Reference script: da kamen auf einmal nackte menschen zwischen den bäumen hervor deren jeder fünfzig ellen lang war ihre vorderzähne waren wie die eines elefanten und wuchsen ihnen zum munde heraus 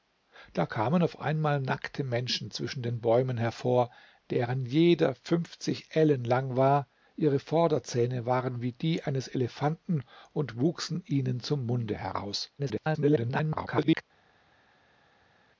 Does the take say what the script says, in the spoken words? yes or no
no